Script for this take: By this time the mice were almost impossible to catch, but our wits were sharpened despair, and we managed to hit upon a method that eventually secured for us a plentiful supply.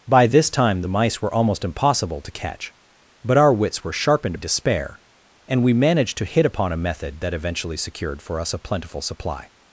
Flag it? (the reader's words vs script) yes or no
no